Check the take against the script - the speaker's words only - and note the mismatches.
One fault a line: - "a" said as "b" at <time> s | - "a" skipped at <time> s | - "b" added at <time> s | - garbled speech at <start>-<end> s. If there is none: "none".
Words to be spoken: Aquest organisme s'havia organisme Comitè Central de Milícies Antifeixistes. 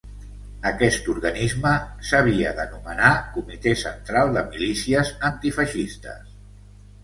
- "organisme" said as "d'anomenar" at 2.6 s